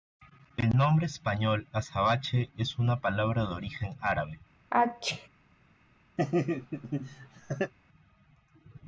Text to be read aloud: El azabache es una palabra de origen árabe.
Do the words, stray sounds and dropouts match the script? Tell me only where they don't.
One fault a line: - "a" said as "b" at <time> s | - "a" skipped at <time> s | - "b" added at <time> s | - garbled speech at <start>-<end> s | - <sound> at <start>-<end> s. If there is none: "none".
- "nombre español" added at 0.7 s
- sneeze at 4.7-5.3 s
- laugh at 6.2-7.7 s